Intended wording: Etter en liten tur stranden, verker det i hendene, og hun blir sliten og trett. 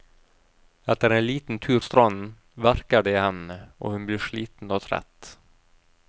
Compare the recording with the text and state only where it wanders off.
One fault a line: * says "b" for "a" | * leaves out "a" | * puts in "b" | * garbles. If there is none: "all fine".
all fine